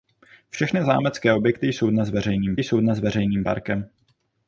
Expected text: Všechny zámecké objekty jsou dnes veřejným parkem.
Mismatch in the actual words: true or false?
true